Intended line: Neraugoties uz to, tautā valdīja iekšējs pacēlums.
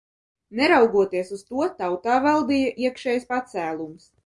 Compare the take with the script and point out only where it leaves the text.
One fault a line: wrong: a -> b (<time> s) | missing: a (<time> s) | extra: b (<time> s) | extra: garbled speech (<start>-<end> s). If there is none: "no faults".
no faults